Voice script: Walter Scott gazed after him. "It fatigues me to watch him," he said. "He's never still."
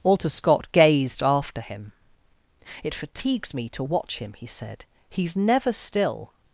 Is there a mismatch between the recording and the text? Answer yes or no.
no